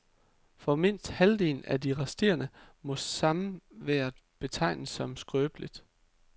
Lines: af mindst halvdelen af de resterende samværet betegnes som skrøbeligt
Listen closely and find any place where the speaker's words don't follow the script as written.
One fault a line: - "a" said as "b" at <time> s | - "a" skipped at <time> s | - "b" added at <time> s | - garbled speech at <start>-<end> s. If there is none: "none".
- "af" said as "for" at 0.6 s
- "må" added at 2.8 s